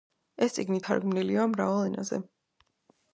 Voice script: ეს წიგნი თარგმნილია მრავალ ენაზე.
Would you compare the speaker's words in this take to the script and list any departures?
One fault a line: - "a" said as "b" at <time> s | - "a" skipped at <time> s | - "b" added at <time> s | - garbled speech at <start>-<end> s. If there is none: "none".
none